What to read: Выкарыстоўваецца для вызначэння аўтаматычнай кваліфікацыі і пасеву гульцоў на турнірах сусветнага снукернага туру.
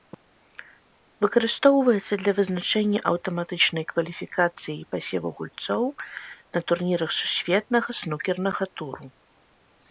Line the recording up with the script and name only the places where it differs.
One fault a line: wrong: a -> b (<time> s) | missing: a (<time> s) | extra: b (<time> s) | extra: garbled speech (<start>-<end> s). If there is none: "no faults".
no faults